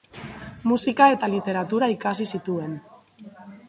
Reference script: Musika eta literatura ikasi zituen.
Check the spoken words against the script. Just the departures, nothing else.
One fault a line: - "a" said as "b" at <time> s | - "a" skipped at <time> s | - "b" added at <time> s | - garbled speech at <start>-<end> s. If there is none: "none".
none